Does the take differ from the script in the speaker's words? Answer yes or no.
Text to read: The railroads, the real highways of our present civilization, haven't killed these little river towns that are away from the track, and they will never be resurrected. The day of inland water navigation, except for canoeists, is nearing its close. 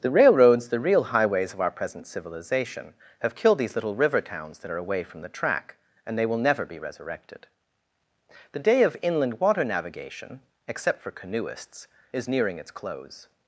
yes